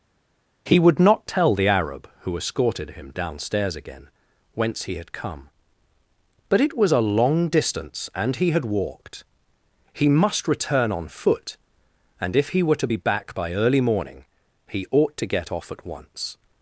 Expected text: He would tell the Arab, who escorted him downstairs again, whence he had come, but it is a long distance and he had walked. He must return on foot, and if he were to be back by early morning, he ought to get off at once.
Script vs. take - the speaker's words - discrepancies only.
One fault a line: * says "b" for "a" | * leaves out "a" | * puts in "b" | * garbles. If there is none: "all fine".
* puts in "not"
* says "was" for "is"